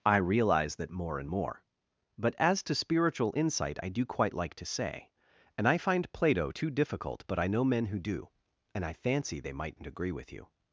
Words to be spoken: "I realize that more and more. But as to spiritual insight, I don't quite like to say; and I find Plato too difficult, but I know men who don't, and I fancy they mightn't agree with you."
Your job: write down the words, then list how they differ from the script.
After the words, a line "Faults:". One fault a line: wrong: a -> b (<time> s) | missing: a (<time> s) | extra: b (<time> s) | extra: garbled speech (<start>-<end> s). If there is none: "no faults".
"I realize that more and more. But as to spiritual insight, I do quite like to say; and I find Plato too difficult, but I know men who do, and I fancy they mightn't agree with you."
Faults:
wrong: don't -> do (3.9 s)
wrong: don't -> do (8.0 s)